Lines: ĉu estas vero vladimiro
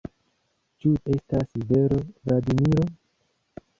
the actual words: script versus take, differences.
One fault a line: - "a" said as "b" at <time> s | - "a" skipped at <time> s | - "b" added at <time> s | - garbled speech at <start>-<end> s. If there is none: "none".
none